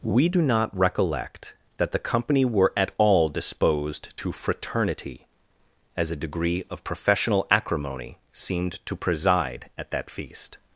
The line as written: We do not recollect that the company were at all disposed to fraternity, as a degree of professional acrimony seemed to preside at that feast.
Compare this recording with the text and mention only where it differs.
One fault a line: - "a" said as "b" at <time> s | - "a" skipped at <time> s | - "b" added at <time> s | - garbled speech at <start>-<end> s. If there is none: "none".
none